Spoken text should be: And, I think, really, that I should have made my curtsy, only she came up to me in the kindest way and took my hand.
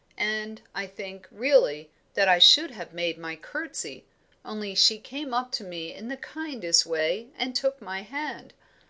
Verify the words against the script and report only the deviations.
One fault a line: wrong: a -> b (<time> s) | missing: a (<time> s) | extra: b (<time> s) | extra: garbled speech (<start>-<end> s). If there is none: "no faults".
no faults